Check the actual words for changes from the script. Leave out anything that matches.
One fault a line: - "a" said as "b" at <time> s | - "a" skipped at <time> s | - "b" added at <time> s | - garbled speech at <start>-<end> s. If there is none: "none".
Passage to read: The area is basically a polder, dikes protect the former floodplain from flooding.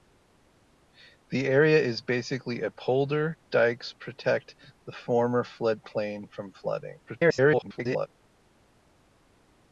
- garbled speech at 7.1-8.1 s